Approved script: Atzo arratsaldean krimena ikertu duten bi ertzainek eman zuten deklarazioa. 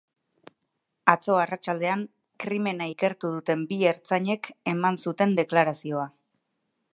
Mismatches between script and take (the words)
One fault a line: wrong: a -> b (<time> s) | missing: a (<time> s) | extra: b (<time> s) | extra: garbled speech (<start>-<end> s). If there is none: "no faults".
no faults